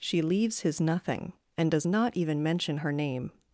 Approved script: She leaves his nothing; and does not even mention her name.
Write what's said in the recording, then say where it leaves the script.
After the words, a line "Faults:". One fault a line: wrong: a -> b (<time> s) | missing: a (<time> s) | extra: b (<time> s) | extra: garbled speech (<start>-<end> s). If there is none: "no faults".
She leaves his nothing; and does not even mention her name.
Faults:
no faults